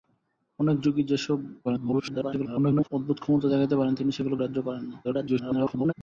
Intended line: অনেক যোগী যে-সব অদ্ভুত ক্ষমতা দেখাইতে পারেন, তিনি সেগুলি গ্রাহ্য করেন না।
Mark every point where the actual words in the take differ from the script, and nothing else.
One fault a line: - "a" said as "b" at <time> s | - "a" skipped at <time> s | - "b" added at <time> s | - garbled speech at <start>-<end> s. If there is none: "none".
- garbled speech at 1.6-2.9 s
- garbled speech at 5.0-5.9 s